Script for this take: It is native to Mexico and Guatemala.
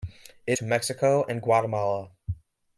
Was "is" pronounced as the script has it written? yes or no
no